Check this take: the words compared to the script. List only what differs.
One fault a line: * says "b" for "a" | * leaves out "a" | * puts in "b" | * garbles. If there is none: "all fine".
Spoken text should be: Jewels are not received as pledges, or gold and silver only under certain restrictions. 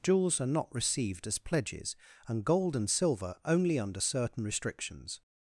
* says "and" for "or"